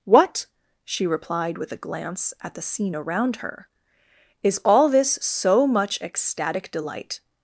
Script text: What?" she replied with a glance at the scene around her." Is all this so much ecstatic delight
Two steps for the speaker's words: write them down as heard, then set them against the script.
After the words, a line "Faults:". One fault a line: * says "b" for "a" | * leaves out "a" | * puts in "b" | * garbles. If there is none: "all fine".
What?" she replied with a glance at the scene around her." Is all this so much ecstatic delight
Faults:
all fine